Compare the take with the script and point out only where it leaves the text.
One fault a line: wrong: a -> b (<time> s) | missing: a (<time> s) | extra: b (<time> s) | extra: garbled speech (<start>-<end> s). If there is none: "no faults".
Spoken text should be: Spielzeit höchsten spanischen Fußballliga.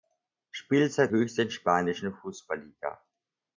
no faults